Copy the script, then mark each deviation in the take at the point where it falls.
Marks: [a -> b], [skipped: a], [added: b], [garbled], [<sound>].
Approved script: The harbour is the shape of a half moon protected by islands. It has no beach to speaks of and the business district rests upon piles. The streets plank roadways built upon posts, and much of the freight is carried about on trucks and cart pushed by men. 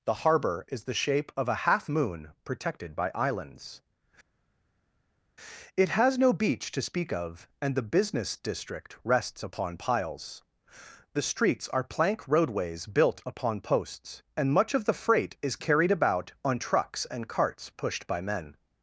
The harbour is the shape of a half moon protected by islands. It has no beach to [speaks -> speak] of and the business district rests upon piles. The streets [added: are] plank roadways built upon posts, and much of the freight is carried about on trucks and [cart -> carts] pushed by men.